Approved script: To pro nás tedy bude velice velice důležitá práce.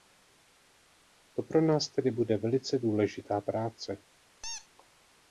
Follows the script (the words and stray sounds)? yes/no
no